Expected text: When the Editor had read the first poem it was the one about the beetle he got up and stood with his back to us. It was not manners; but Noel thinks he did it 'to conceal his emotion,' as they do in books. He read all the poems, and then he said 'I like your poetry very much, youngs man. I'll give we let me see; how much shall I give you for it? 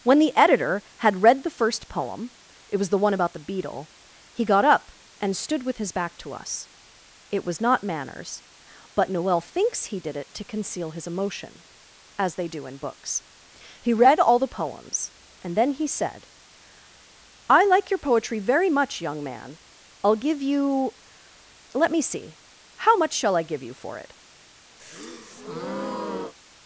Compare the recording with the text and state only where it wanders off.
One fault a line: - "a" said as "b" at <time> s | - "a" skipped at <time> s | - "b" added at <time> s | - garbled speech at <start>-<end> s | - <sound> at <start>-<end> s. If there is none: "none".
- "youngs" said as "young" at 19.0 s
- "we" said as "you" at 20.4 s
- breath at 24.8-26.3 s